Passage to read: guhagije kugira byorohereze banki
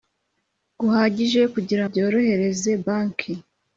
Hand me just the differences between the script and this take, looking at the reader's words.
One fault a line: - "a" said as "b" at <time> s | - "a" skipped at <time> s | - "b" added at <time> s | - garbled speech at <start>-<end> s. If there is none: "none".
none